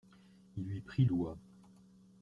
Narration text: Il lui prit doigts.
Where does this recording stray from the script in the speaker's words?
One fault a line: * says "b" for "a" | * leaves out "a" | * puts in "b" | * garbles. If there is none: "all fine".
all fine